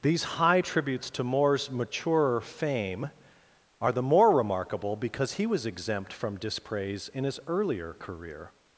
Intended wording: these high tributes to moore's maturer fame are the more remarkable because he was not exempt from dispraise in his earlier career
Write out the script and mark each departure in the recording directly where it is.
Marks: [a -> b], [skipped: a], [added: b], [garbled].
these high tributes to moore's maturer fame are the more remarkable because he was [skipped: not] exempt from dispraise in his earlier career